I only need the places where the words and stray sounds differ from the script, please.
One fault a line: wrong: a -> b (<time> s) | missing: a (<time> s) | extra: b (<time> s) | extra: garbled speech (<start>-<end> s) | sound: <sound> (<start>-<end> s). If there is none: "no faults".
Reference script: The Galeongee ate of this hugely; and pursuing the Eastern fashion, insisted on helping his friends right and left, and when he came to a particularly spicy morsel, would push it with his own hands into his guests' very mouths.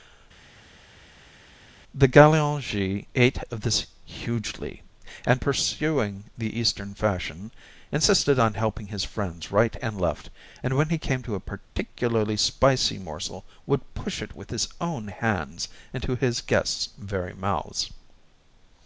no faults